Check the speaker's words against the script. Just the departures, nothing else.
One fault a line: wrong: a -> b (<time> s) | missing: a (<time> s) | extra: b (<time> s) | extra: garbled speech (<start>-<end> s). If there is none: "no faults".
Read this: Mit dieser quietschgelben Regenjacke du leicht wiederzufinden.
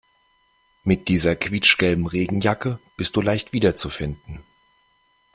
extra: bist (3.0 s)